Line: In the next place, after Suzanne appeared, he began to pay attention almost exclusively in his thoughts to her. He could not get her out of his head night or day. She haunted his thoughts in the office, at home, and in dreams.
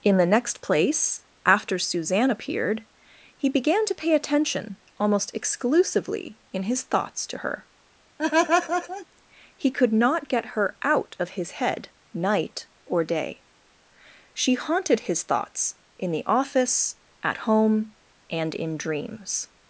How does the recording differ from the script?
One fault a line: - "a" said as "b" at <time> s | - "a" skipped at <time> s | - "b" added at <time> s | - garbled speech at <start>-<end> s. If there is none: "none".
none